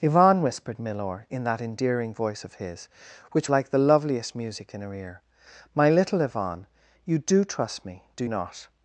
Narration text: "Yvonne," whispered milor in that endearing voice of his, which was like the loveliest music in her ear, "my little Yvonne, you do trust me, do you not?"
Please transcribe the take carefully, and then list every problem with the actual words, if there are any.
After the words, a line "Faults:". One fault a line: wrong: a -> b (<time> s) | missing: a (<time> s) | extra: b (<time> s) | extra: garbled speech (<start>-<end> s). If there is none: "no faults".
"Yvonne," whispered milor in that endearing voice of his, which like the loveliest music in her ear, "my little Yvonne, you do trust me, do not?"
Faults:
missing: was (3.5 s)
missing: you (8.2 s)